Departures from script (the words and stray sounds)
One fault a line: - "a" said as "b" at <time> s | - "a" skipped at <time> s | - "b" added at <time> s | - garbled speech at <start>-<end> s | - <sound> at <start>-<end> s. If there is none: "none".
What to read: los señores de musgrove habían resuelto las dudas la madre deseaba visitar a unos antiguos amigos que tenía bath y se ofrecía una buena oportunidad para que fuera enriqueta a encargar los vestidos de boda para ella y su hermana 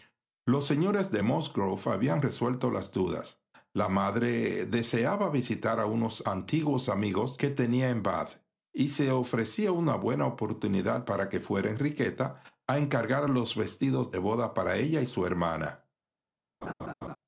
- "en" added at 7.9 s
- laugh at 16.6-17.2 s